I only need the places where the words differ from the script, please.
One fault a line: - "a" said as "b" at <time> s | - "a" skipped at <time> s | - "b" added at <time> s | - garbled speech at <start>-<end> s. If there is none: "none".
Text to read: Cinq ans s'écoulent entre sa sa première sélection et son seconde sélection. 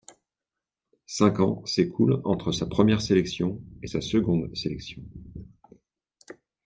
- "sa" skipped at 2.6 s
- "son" said as "sa" at 3.8 s